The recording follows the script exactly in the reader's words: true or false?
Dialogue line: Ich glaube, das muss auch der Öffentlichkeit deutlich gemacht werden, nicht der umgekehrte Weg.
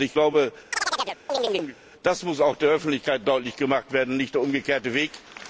true